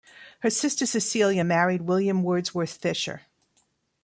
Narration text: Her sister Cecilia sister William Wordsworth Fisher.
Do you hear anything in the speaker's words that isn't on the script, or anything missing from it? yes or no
yes